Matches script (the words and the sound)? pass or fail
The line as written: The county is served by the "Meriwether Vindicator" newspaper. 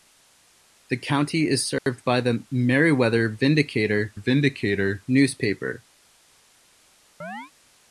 fail